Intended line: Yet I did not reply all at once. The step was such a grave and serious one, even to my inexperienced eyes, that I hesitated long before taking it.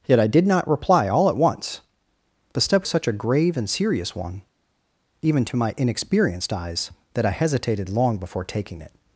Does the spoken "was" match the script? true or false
false